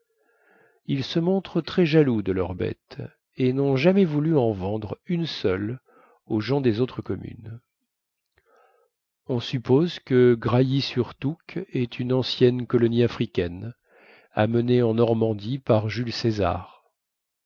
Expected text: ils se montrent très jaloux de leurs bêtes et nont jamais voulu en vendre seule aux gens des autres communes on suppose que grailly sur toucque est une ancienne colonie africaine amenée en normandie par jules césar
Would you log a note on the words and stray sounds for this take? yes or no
yes